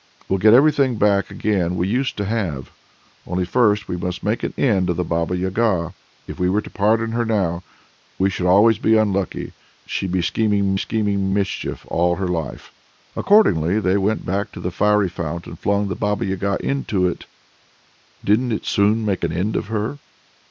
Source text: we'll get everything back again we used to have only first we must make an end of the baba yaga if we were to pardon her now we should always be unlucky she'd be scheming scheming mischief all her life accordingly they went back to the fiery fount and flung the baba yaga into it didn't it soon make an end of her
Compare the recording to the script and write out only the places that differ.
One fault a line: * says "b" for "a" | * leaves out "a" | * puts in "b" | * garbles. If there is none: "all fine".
all fine